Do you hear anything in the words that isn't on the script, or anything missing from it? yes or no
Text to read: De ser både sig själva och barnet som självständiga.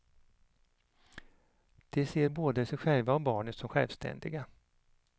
no